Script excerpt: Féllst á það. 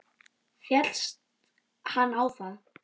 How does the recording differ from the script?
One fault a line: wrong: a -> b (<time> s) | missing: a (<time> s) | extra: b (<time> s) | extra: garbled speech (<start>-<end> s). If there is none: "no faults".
extra: hann (2.0 s)